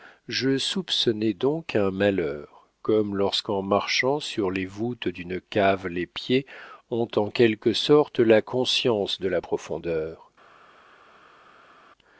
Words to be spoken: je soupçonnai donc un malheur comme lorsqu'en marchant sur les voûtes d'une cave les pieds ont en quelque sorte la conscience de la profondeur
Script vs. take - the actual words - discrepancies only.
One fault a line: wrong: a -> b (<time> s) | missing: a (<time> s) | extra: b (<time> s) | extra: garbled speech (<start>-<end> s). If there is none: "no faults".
no faults